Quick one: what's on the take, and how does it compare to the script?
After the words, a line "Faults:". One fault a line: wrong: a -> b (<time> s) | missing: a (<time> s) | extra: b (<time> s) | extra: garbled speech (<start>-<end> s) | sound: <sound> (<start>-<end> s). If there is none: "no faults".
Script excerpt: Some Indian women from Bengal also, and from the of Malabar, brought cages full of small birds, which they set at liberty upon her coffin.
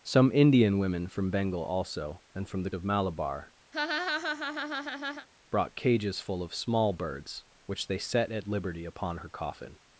Some Indian women from Bengal also, and from the of Malabar, brought cages full of small birds, which they set at liberty upon her coffin.
Faults:
sound: laugh (3.7-5.3 s)